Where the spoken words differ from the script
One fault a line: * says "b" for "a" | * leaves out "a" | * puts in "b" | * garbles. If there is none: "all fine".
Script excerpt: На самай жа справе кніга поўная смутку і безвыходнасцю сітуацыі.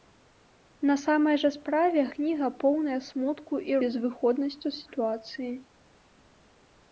all fine